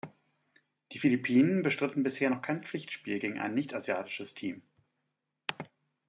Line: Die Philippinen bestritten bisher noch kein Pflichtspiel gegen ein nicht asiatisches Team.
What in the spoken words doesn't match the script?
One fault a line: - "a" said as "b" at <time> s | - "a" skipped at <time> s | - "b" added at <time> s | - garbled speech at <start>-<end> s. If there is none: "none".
none